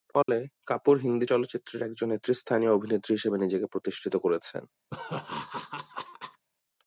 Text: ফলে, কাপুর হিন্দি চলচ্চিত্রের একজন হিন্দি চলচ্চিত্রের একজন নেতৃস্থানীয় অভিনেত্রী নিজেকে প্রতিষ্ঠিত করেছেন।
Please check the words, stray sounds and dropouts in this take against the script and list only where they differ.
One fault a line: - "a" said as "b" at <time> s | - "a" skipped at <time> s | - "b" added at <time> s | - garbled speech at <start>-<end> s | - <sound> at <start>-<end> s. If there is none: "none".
- dropout at 0.2-0.3 s
- "হিন্দি চলচ্চিত্রের একজন" skipped at 2.1 s
- "হিসেবে" added at 3.1 s
- laugh at 4.9-6.4 s